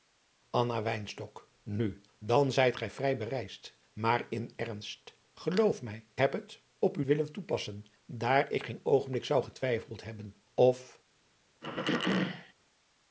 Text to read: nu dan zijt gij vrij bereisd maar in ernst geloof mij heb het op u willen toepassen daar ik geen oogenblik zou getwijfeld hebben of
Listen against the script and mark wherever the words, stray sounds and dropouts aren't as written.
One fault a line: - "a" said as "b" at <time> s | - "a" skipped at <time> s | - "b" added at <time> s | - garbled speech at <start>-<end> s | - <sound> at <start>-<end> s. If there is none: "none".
- throat clearing at 11.6-12.5 s